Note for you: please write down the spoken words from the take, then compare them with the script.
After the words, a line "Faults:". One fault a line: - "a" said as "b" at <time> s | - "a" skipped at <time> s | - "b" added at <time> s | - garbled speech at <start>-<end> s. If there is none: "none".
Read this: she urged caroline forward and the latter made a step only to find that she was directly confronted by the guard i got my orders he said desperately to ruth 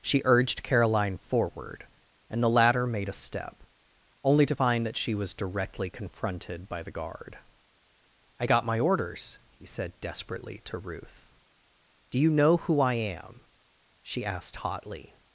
she urged caroline forward and the latter made a step only to find that she was directly confronted by the guard i got my orders he said desperately to ruth do you know who i am she asked hotly
Faults:
- "do you know who i am she asked hotly" added at 12.1 s